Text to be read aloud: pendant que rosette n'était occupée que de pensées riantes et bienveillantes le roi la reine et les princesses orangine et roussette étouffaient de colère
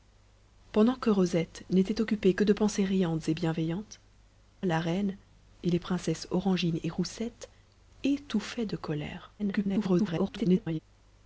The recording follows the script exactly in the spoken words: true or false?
false